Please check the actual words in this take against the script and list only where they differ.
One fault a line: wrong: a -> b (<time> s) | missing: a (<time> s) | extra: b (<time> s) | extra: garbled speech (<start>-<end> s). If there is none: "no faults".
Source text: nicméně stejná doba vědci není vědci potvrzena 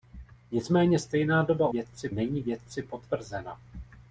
no faults